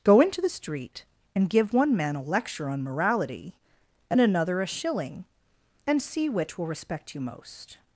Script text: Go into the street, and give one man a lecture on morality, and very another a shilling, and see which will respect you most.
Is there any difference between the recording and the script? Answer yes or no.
yes